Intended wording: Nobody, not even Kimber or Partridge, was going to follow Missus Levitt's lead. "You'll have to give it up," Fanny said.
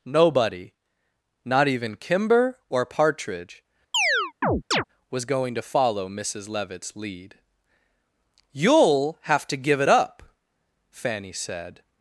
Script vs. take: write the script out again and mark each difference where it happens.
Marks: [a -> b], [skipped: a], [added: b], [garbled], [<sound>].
Nobody, not even Kimber or Partridge, [chirp] was going to follow Missus Levitt's lead. "You'll have to give it up," Fanny said.